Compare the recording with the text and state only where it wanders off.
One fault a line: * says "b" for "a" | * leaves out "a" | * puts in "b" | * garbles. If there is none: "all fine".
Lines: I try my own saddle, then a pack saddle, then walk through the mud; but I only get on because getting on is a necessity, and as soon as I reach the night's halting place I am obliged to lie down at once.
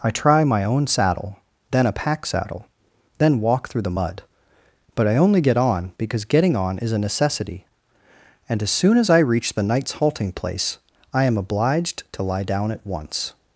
all fine